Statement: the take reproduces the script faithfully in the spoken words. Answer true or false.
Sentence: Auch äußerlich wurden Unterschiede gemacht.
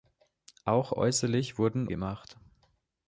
false